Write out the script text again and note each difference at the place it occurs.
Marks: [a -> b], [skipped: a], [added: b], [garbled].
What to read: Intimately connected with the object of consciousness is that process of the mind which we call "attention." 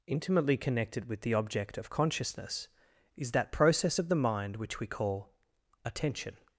Intimately connected with the object of consciousness is that process of the mind which we call "attention."